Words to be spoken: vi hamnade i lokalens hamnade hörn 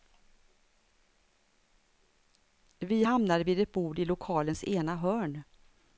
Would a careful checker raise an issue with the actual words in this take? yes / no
yes